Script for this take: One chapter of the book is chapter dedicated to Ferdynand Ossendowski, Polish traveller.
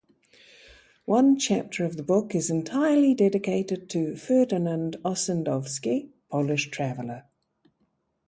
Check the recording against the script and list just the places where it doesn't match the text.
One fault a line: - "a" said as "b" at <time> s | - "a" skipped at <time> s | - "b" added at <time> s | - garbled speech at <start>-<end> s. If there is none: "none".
- "chapter" said as "entirely" at 2.5 s